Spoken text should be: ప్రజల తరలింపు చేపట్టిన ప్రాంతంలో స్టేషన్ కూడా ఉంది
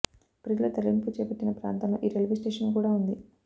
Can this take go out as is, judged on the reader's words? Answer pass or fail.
fail